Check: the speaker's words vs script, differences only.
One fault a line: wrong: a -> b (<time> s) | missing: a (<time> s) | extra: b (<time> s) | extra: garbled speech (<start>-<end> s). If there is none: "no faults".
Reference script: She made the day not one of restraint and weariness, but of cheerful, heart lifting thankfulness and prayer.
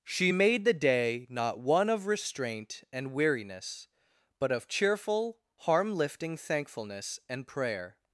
wrong: heart -> harm (5.6 s)